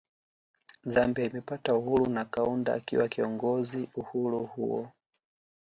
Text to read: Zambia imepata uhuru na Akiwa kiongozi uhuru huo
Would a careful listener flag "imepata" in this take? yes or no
no